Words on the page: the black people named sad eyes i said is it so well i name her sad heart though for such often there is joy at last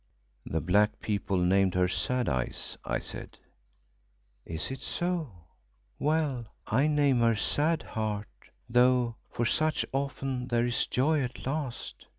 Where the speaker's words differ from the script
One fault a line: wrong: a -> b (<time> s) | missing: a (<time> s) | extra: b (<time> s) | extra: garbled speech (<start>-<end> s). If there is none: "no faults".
extra: her (1.8 s)